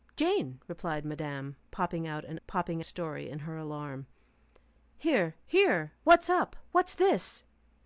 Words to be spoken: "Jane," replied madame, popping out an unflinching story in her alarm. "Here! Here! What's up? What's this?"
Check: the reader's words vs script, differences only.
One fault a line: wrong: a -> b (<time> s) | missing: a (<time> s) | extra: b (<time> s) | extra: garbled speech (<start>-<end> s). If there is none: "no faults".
wrong: unflinching -> popping (2.4 s)